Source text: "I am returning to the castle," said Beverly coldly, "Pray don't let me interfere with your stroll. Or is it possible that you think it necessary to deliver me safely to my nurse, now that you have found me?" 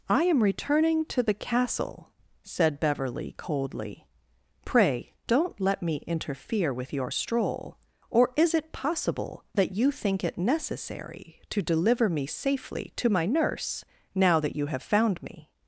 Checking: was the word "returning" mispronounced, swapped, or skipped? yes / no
no